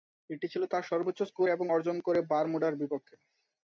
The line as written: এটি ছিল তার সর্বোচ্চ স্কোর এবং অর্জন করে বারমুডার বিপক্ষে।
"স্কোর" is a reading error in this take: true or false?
false